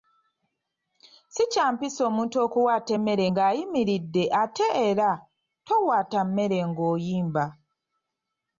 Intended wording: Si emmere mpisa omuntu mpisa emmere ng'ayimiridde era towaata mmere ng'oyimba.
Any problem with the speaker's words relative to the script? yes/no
yes